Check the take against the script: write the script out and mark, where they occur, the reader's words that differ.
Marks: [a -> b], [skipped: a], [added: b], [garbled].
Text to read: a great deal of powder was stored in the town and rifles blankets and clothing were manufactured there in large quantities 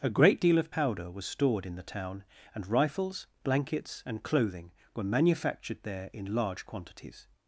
a great deal of powder was stored in the town and rifles blankets and clothing were manufactured there in large quantities